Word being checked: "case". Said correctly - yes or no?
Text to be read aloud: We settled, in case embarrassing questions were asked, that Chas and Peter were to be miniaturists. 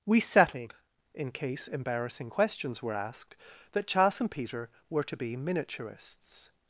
yes